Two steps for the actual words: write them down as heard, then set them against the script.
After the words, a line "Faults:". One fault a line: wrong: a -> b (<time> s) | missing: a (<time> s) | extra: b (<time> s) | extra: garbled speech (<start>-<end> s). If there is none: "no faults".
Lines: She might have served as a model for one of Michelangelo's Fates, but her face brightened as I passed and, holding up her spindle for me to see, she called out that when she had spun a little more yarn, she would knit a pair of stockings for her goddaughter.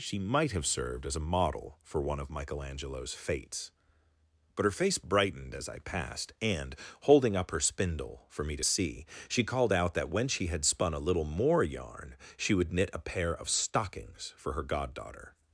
She might have served as a model for one of Michelangelo's Fates, but her face brightened as I passed and, holding up her spindle for me to see, she called out that when she had spun a little more yarn, she would knit a pair of stockings for her goddaughter.
Faults:
no faults